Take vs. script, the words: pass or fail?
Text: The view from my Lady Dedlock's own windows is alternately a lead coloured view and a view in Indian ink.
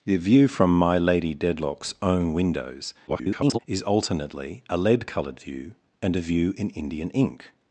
fail